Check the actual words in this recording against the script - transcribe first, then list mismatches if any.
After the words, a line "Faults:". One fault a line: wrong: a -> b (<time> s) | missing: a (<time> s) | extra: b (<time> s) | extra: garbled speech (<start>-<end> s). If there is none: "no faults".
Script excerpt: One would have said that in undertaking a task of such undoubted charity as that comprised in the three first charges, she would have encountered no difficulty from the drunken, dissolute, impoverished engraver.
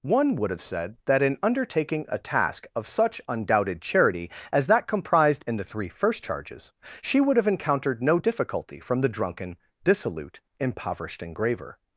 One would have said that in undertaking a task of such undoubted charity as that comprised in the three first charges, she would have encountered no difficulty from the drunken, dissolute, impoverished engraver.
Faults:
no faults